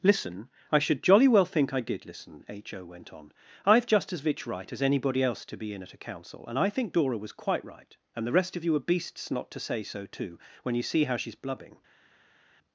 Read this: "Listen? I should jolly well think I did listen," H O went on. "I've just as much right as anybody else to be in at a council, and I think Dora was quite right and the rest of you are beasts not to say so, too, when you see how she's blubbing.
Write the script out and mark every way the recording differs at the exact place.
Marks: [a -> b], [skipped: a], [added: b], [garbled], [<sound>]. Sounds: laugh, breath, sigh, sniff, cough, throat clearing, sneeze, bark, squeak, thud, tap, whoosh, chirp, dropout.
"Listen? I should jolly well think I did listen," H O went on. "I've just as [much -> vich] right as anybody else to be in at a council, and I think Dora was quite right and the rest of you are beasts not to say so, too, when you see how she's blubbing.